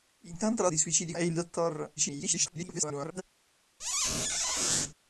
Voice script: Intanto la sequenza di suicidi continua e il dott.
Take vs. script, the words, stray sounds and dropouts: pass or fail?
fail